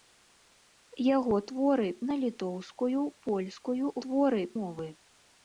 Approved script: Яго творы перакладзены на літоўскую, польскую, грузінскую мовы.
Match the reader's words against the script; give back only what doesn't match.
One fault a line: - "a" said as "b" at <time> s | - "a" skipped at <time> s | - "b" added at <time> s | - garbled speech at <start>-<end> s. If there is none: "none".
- "перакладзены" skipped at 1.9 s
- "грузінскую" said as "творы" at 4.0 s